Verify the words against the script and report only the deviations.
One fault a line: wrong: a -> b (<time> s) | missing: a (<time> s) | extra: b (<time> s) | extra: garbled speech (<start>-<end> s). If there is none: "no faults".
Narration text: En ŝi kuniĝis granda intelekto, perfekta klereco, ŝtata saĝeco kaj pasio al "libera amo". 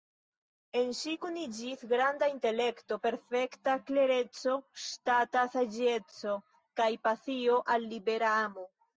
no faults